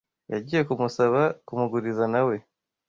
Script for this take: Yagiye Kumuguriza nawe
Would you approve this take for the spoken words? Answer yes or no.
no